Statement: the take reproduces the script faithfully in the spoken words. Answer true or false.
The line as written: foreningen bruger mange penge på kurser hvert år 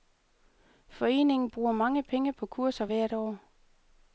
true